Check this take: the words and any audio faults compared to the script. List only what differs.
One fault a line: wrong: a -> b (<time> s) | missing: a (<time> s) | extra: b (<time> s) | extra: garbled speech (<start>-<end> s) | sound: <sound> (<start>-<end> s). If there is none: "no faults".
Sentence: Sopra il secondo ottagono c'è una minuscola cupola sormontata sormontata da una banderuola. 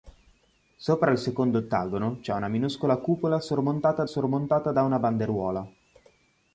no faults